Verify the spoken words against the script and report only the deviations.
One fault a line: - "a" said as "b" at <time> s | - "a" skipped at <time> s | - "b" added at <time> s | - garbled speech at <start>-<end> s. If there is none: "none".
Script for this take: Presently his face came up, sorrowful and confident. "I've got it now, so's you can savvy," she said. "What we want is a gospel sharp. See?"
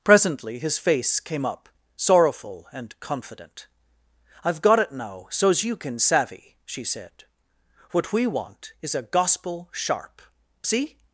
none